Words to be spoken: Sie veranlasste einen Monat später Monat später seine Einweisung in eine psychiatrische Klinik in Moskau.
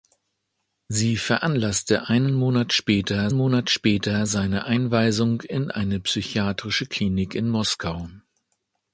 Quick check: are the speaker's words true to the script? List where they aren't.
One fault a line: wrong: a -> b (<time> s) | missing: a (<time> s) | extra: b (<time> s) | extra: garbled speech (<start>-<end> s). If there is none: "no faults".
no faults